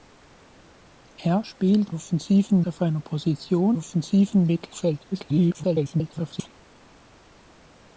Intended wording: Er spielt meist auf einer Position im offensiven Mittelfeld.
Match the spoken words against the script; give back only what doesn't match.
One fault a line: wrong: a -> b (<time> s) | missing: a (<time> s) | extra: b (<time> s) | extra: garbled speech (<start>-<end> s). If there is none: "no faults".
wrong: meist -> offensiven (1.9 s)
missing: im (3.8 s)
extra: garbled speech (5.1-6.5 s)